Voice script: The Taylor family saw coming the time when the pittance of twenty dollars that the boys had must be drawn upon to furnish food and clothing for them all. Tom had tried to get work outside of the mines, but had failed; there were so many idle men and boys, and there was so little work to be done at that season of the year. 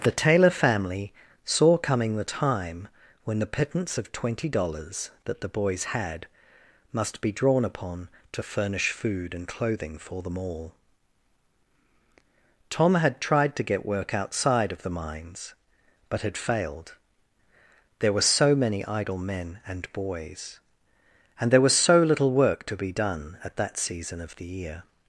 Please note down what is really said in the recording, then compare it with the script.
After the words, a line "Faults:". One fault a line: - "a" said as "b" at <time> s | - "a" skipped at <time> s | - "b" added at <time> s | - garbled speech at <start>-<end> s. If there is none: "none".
The Taylor family saw coming the time when the pittance of twenty dollars that the boys had must be drawn upon to furnish food and clothing for them all. Tom had tried to get work outside of the mines, but had failed; there were so many idle men and boys, and there was so little work to be done at that season of the year.
Faults:
none